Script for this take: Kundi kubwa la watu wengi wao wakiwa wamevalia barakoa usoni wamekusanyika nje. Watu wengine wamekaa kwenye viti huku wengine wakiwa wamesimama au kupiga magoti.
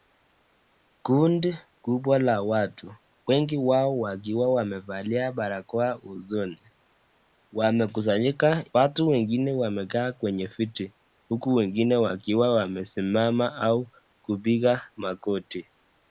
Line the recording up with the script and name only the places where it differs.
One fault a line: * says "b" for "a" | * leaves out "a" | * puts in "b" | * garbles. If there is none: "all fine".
* leaves out "nje"